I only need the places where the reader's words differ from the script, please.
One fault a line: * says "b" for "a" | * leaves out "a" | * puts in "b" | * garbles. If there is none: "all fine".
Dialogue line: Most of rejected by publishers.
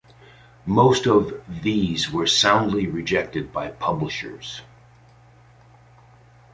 * puts in "these were soundly"